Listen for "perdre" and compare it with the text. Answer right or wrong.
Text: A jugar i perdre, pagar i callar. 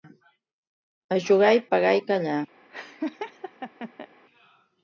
wrong